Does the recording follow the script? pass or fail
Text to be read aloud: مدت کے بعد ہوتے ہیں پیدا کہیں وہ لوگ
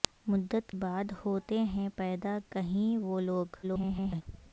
fail